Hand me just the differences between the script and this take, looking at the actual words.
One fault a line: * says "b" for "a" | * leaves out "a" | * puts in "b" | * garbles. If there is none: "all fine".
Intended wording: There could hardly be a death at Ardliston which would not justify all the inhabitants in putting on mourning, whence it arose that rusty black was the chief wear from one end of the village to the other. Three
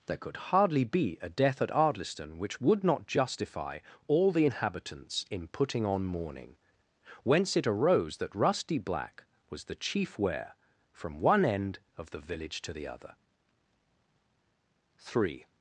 all fine